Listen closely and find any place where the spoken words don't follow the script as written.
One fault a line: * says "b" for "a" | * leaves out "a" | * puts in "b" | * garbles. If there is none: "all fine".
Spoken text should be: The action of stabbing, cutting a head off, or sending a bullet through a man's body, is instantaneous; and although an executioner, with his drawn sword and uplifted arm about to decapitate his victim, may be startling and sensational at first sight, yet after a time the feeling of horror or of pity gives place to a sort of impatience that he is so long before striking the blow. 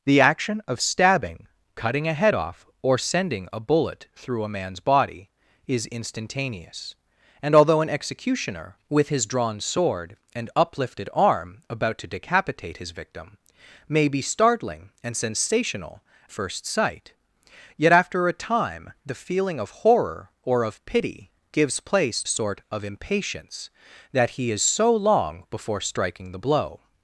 * leaves out "at"
* leaves out "to"